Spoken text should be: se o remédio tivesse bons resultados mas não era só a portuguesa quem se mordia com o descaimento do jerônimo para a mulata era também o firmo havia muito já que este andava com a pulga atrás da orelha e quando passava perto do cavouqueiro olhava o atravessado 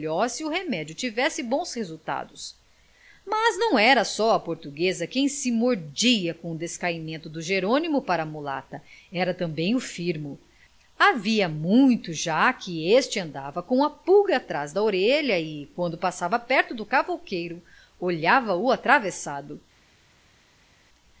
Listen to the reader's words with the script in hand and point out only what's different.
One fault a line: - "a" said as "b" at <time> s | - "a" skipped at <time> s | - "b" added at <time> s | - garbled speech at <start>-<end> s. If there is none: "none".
none